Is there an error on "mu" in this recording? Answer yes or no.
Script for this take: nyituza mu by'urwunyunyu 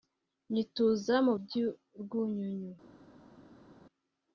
no